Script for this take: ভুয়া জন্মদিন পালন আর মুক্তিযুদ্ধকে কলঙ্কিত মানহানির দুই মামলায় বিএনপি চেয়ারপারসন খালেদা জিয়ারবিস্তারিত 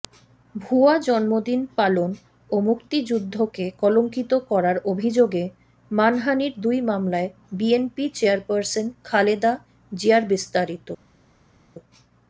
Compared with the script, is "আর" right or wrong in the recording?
wrong